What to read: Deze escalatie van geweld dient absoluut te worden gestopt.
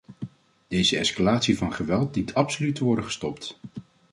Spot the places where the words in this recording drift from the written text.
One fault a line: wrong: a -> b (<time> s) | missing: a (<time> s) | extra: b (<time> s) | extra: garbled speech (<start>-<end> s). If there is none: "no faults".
no faults